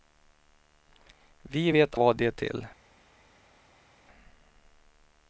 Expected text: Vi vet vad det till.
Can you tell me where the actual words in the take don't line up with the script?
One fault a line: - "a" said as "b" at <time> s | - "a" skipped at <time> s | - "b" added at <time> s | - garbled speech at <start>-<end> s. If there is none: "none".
none